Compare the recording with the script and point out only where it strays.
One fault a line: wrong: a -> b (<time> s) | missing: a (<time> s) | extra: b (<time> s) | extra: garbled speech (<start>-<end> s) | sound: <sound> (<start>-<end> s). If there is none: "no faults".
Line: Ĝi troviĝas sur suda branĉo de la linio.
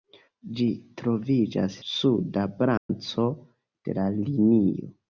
missing: sur (1.8 s)
sound: dropout (2.8-2.9 s)